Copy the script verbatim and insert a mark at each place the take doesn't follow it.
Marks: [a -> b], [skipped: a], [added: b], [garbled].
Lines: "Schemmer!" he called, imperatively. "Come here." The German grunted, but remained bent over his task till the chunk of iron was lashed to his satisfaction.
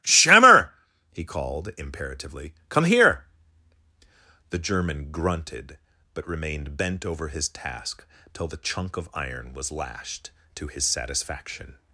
"Schemmer!" he called, imperatively. "Come here." The German grunted, but remained bent over his task till the chunk of iron was lashed to his satisfaction.